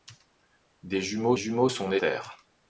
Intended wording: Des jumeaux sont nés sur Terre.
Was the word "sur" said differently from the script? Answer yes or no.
yes